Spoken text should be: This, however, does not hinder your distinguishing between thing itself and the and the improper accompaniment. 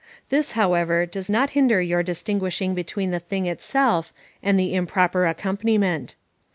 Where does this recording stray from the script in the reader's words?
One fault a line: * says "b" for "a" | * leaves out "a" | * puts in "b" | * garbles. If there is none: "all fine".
* puts in "the"
* leaves out "and the"